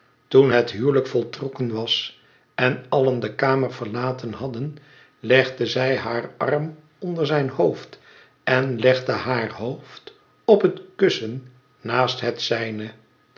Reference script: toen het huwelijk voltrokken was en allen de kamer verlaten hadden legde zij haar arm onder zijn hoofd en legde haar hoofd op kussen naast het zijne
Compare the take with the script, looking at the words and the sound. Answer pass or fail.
fail